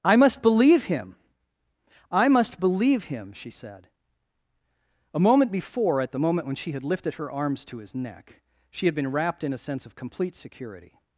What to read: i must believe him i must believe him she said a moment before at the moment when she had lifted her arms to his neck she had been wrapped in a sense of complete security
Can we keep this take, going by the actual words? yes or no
yes